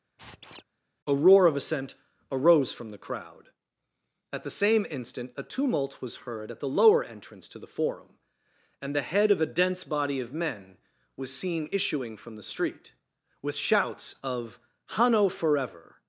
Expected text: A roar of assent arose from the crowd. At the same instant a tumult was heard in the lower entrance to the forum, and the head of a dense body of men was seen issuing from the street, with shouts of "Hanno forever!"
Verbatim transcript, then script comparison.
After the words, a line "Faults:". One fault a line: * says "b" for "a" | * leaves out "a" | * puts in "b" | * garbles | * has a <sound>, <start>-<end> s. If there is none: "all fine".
A roar of assent arose from the crowd. At the same instant a tumult was heard at the lower entrance to the forum, and the head of a dense body of men was seen issuing from the street, with shouts of "Hanno forever!"
Faults:
* has a squeak, 0.2-0.6 s
* says "at" for "in"